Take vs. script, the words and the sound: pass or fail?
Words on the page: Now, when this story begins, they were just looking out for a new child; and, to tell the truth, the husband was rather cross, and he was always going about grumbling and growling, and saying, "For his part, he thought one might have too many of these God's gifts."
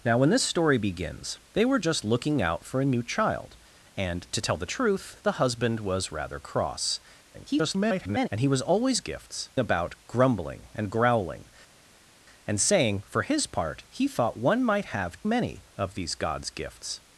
fail